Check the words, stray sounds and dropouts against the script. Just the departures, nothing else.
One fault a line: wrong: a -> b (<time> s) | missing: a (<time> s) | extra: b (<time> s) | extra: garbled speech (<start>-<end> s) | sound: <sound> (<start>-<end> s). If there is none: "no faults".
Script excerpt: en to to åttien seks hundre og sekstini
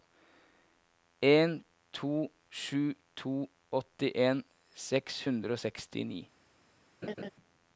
extra: sju (2.5 s)
sound: laugh (7.0-7.3 s)